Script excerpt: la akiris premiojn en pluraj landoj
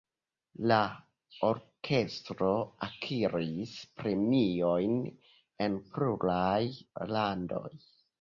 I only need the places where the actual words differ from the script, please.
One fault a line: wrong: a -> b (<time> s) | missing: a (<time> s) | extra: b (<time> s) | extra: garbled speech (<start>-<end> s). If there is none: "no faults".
extra: orkestro (1.5 s)